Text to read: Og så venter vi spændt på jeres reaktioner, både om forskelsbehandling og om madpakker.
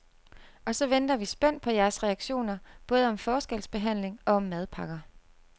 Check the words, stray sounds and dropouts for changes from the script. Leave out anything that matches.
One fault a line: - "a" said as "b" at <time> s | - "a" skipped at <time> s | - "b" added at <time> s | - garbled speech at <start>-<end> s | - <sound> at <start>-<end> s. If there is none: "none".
none